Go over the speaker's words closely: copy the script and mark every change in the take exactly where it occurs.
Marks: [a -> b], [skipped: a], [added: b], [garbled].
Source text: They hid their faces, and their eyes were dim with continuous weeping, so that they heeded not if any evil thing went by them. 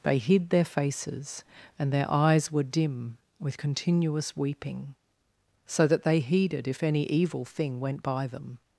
They hid their faces, and their eyes were dim with continuous weeping, so that they heeded [skipped: not] if any evil thing went by them.